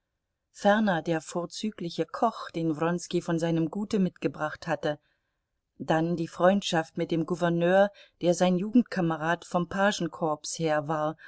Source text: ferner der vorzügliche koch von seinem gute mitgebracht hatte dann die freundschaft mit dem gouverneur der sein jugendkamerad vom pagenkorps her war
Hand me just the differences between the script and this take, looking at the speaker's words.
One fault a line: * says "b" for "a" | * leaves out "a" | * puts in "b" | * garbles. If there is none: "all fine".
* puts in "den wronski"